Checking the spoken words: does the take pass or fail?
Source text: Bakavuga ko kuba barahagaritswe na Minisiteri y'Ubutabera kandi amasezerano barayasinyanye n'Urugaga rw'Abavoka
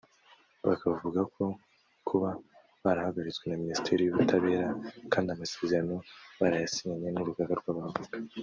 pass